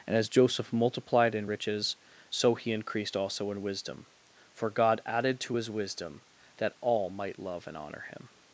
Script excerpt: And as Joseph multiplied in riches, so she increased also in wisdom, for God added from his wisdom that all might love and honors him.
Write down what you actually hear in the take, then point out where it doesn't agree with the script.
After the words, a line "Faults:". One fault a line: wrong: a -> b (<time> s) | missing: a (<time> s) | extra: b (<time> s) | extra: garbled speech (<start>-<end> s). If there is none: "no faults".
And as Joseph multiplied in riches, so he increased also in wisdom, for God added to his wisdom that all might love and honor him.
Faults:
wrong: she -> he (2.5 s)
wrong: from -> to (5.4 s)
wrong: honors -> honor (7.8 s)